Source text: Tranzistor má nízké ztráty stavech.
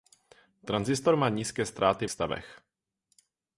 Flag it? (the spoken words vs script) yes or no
no